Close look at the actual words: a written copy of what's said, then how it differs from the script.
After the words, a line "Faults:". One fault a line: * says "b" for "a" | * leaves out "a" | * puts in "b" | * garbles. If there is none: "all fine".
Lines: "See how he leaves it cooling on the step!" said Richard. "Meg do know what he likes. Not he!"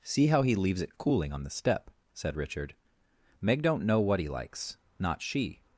"See how he leaves it cooling on the step!" said Richard. "Meg don't know what he likes. Not she!"
Faults:
* says "don't" for "do"
* says "she" for "he"